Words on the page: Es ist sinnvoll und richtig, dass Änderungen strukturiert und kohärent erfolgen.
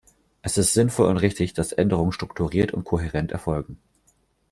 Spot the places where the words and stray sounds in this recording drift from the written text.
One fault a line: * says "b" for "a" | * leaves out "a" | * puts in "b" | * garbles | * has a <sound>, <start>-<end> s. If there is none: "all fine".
all fine